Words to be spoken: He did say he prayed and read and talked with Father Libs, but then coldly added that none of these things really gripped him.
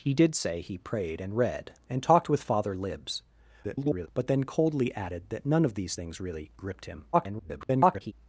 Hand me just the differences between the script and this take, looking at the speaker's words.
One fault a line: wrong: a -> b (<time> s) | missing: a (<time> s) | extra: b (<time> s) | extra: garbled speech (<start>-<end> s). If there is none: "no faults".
extra: garbled speech (3.6-4.1 s)
extra: garbled speech (7.1-8.1 s)